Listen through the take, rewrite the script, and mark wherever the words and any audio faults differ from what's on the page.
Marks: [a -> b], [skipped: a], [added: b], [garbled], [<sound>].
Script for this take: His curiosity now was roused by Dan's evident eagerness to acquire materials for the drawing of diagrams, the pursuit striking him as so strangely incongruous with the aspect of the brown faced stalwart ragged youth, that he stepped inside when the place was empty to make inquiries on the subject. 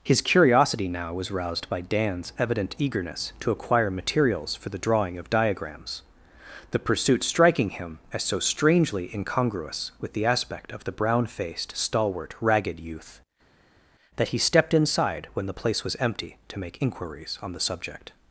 His curiosity now was roused by Dan's evident eagerness to acquire materials for the drawing of diagrams, the pursuit striking him as so strangely incongruous with the aspect of the brown faced stalwart ragged youth, that he stepped inside when the place was empty to make inquiries on the subject.